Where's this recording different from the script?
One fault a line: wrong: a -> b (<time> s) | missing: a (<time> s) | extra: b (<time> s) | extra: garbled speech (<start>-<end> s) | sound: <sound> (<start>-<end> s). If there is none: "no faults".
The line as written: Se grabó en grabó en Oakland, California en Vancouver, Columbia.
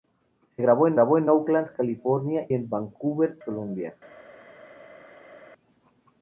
no faults